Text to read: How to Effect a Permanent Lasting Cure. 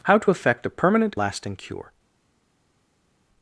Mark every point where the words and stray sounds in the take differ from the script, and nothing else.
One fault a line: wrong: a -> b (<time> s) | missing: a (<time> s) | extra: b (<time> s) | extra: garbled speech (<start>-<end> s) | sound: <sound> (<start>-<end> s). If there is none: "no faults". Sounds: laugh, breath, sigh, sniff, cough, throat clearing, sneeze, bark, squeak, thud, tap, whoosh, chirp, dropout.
no faults